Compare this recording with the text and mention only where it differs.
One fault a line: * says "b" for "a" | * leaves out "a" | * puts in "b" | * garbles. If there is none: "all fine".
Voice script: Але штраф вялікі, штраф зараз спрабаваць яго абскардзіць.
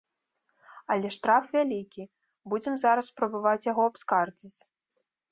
* says "будзем" for "штраф"